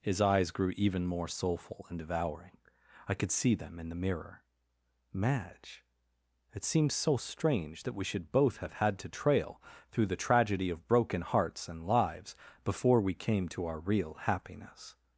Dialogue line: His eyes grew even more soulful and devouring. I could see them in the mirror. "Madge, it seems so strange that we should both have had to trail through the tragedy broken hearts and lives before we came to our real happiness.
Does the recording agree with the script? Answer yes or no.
no